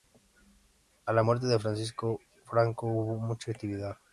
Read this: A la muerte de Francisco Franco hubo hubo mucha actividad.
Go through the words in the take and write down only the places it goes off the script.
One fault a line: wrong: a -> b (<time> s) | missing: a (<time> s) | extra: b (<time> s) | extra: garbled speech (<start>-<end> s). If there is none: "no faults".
missing: hubo (3.2 s)